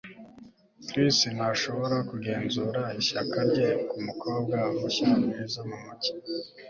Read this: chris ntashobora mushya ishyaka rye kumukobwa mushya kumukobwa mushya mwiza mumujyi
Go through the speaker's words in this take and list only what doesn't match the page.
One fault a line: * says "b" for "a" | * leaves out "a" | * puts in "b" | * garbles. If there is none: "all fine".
* says "kugenzura" for "mushya"
* leaves out "kumukobwa mushya"